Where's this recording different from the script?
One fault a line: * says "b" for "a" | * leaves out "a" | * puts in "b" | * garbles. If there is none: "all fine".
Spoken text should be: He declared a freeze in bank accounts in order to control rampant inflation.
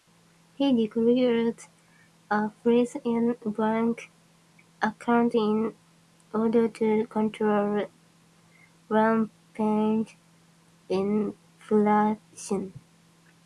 all fine